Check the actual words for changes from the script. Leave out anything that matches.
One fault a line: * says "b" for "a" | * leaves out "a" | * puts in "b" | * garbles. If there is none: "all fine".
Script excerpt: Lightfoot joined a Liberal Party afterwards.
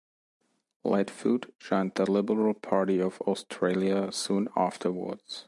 * says "the" for "a"
* puts in "of Australia soon"